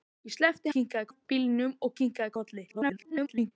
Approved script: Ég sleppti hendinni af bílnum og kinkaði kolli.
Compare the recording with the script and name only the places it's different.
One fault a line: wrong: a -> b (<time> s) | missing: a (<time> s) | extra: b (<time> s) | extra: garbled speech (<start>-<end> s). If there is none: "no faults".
wrong: hendinni -> kinkaði (0.7 s)
extra: garbled speech (2.7-3.5 s)